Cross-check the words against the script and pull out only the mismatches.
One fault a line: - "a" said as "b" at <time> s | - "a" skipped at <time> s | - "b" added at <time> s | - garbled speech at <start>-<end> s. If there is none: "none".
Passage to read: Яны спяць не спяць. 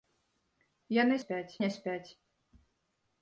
none